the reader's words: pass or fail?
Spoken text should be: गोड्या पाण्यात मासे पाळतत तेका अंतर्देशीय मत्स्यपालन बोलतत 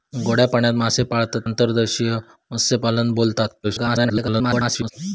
fail